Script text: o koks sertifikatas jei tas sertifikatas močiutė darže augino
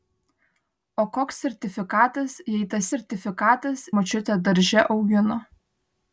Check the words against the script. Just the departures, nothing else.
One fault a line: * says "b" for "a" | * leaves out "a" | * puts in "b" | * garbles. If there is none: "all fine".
all fine